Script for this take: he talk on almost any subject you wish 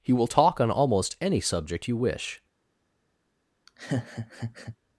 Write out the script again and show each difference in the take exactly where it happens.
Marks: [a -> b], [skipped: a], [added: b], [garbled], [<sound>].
he [added: will] talk on almost any subject you wish [laugh]